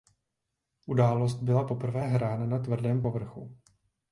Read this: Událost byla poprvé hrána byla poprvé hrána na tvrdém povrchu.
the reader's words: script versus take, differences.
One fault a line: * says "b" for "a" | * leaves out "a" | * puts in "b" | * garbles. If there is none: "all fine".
* leaves out "byla poprvé hrána"